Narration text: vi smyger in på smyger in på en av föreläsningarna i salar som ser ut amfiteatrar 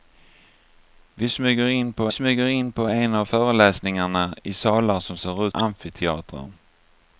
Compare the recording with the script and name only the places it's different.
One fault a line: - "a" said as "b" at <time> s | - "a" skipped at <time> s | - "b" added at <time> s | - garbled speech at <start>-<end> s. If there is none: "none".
none